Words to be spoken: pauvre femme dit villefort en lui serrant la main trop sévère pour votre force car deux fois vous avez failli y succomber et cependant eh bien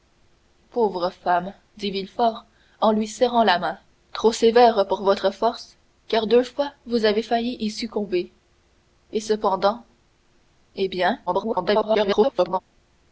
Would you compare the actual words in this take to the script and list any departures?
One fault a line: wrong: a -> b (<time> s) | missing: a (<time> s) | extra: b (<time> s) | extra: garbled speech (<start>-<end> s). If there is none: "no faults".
extra: garbled speech (11.3-12.6 s)